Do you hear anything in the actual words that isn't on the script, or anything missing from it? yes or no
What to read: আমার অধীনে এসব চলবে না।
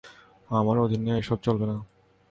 no